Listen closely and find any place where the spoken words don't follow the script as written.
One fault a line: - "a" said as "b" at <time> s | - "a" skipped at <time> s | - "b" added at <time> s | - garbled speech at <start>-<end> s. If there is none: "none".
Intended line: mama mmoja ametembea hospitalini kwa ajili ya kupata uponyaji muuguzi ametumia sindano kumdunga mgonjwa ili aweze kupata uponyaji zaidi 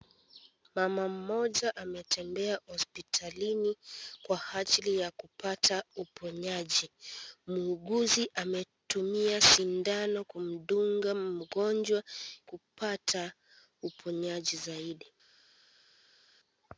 - "ili aweze" skipped at 12.0 s